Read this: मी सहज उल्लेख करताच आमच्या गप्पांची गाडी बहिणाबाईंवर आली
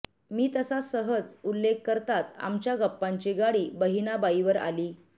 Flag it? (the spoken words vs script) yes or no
yes